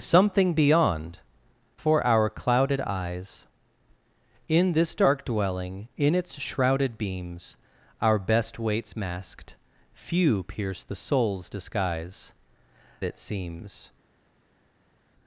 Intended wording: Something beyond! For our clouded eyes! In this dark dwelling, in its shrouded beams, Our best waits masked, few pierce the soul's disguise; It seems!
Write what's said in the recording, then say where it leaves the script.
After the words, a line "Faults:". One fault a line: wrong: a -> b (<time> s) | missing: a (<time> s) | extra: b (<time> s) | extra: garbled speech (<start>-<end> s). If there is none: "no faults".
Something beyond! For our clouded eyes! In this dark dwelling, in its shrouded beams, Our best waits masked, few pierce the soul's disguise; It seems!
Faults:
no faults